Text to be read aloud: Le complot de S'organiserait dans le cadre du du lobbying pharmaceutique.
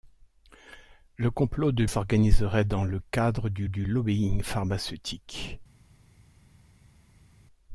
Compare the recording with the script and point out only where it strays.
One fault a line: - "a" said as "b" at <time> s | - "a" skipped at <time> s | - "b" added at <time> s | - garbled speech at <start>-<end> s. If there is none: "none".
none